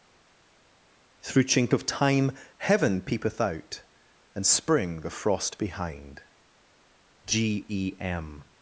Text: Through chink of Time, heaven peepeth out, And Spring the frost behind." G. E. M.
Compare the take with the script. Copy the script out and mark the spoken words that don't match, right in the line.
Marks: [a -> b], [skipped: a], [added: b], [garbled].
Through chink of Time, heaven peepeth out, And Spring the frost behind." G. E. M.